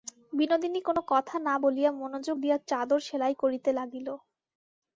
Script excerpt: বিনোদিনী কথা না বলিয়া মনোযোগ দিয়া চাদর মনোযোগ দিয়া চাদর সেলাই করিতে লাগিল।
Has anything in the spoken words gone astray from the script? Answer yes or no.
yes